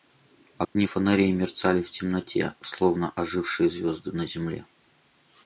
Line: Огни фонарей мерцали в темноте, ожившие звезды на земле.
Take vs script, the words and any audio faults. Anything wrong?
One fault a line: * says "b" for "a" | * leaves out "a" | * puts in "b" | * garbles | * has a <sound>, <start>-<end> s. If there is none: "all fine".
* has a dropout, 0.6-0.8 s
* puts in "словно"